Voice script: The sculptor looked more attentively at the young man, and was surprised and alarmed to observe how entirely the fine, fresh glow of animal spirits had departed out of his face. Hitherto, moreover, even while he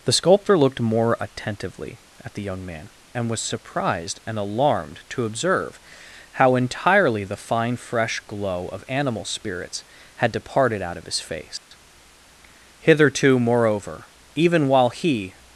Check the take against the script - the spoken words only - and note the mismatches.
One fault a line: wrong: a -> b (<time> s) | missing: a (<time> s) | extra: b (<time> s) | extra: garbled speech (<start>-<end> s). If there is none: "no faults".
no faults